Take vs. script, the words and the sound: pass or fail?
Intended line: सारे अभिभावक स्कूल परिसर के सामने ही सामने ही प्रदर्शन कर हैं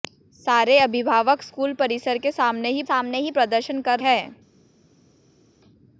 pass